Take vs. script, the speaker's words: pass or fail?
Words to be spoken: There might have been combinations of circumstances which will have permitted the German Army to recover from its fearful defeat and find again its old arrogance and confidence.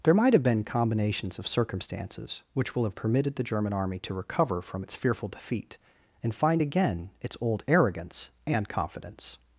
pass